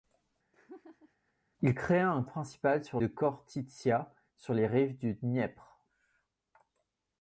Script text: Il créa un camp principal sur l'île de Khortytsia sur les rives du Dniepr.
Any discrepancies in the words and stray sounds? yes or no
yes